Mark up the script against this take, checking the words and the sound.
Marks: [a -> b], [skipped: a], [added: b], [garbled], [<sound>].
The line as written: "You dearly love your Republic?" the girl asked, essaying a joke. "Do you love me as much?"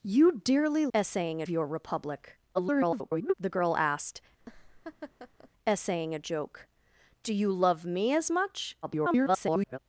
"You dearly [love -> essaying] your Republic?" [garbled] the girl asked, [laugh] essaying a joke. "Do you love me as much?" [garbled]